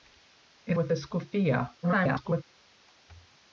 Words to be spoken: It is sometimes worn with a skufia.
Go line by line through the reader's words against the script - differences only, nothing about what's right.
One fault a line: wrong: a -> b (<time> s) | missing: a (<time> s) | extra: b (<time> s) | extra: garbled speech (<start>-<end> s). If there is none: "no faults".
missing: is sometimes worn (0.8 s)
extra: garbled speech (1.8-2.4 s)